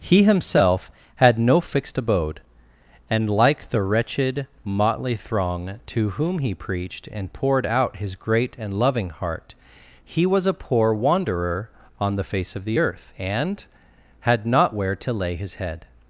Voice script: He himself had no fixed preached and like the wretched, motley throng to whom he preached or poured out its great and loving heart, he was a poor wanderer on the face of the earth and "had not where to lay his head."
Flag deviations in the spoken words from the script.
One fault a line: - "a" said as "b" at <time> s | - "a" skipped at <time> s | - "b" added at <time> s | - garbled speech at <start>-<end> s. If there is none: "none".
- "preached" said as "abode" at 2.0 s
- "or" said as "and" at 7.1 s
- "its" said as "his" at 8.0 s